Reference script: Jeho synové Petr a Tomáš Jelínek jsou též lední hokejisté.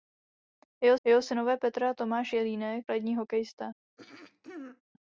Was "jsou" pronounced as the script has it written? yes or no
no